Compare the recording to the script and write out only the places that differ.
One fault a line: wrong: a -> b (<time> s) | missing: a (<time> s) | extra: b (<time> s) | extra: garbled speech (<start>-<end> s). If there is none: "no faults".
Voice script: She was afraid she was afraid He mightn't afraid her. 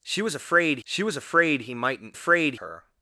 no faults